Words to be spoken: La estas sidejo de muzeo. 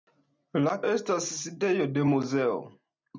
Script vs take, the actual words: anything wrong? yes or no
no